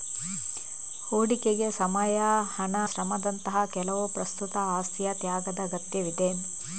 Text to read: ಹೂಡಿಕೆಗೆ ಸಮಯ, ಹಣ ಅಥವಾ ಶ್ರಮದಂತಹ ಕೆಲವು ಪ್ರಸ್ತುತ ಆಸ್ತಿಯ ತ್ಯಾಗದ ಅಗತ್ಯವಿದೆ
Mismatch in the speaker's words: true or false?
true